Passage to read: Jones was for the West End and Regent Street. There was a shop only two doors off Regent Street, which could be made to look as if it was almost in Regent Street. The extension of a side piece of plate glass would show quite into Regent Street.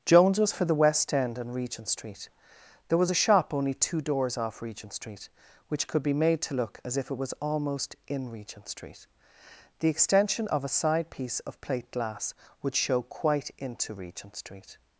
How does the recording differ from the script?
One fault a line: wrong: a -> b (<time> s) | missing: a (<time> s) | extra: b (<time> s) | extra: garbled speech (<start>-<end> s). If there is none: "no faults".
no faults